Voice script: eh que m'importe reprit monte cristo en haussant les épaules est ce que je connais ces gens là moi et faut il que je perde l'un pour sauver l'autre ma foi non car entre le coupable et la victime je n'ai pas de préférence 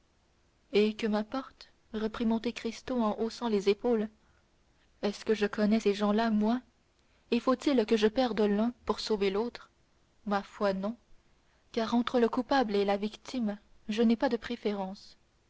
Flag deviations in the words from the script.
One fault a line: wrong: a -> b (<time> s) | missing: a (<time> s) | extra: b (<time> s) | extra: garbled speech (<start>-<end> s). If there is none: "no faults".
no faults